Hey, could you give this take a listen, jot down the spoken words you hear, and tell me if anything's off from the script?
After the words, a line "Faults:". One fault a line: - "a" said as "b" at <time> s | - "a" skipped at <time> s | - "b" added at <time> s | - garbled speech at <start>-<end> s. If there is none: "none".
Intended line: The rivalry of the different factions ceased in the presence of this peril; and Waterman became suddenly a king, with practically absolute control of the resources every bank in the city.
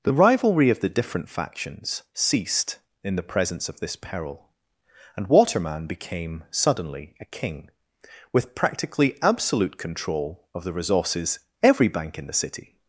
The rivalry of the different factions ceased in the presence of this peril; and Waterman became suddenly a king, with practically absolute control of the resources every bank in the city.
Faults:
none